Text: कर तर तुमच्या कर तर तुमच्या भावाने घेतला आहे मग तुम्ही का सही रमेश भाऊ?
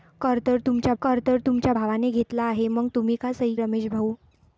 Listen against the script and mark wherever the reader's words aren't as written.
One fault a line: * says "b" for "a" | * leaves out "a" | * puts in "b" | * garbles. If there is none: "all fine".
all fine